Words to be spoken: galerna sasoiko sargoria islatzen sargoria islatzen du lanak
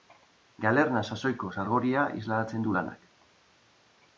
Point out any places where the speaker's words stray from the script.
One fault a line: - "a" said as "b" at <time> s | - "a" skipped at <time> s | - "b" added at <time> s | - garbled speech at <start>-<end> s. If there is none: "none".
- "sargoria islatzen" skipped at 2.7 s